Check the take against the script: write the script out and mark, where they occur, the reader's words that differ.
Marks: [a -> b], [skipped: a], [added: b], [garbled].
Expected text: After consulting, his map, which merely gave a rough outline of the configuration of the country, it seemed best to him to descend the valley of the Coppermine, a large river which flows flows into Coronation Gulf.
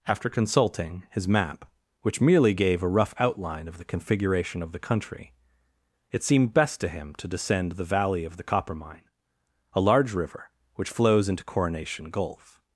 After consulting, his map, which merely gave a rough outline of the configuration of the country, it seemed best to him to descend the valley of the Coppermine, a large river which flows [skipped: flows] into Coronation Gulf.